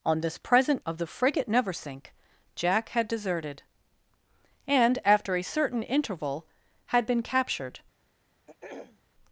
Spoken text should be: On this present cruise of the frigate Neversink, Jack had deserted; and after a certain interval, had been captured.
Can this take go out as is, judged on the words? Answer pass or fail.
fail